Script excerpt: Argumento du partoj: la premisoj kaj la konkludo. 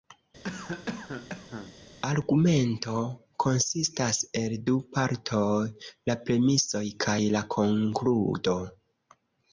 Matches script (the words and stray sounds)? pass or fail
fail